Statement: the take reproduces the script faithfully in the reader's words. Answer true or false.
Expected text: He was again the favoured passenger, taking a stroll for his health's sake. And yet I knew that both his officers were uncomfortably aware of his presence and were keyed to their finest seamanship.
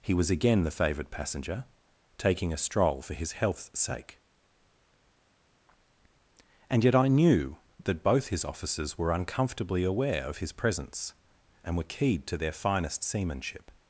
true